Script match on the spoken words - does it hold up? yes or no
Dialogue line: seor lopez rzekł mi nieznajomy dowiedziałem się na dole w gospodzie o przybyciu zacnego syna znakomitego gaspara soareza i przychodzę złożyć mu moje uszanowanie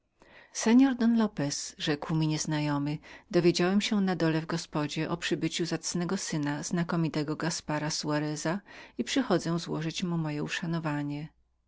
no